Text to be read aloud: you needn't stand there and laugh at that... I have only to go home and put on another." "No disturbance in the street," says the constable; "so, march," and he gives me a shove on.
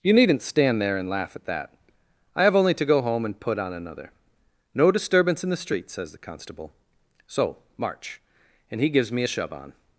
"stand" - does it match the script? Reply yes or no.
yes